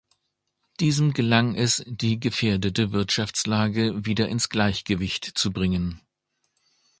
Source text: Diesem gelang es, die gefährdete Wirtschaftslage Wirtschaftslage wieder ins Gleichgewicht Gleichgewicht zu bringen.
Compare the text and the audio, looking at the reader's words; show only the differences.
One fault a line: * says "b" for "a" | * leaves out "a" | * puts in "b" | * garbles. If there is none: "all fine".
* leaves out "Wirtschaftslage"
* leaves out "Gleichgewicht"